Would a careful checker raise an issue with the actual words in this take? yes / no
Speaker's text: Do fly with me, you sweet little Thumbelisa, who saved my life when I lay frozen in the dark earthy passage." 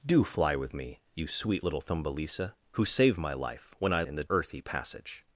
yes